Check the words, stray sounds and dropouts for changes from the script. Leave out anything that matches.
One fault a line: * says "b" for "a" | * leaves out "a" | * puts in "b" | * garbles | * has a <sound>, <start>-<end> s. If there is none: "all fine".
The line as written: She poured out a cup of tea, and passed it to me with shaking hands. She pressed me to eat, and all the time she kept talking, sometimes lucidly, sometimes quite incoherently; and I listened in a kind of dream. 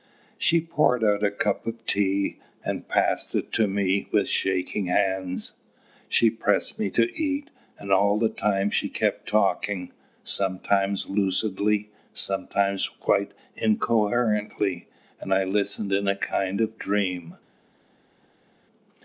all fine